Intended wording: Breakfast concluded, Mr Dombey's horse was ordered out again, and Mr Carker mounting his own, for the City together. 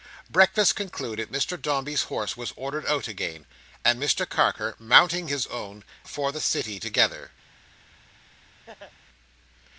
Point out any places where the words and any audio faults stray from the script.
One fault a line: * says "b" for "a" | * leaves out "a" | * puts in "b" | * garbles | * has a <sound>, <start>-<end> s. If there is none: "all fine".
* has a laugh, 8.7-8.9 s